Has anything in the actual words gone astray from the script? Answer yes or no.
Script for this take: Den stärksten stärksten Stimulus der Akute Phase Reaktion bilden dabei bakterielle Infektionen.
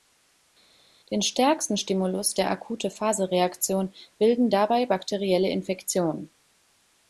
yes